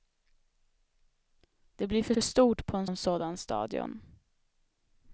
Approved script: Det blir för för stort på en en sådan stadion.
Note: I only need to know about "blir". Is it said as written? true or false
true